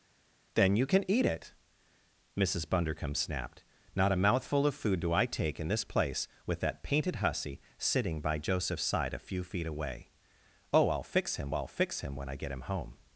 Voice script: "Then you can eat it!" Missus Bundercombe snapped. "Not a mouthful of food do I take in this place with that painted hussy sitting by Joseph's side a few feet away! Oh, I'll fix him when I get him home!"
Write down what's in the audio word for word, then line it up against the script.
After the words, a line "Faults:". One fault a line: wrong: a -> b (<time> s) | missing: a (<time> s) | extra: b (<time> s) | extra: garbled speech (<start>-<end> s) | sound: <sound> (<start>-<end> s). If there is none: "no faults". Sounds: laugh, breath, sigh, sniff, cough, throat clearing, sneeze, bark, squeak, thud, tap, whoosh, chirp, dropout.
"Then you can eat it!" Missus Bundercombe snapped. "Not a mouthful of food do I take in this place with that painted hussy sitting by Joseph's side a few feet away! Oh, I'll fix him I'll fix him when I get him home!"
Faults:
extra: I'll fix him (11.5 s)